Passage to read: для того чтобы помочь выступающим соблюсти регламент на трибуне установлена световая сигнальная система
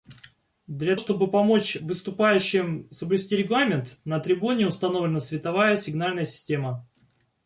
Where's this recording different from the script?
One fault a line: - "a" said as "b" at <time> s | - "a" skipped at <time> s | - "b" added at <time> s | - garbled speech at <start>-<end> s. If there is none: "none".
- "того" skipped at 0.9 s